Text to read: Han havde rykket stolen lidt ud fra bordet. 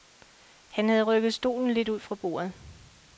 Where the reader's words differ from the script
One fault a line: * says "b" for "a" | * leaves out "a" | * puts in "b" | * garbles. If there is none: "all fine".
all fine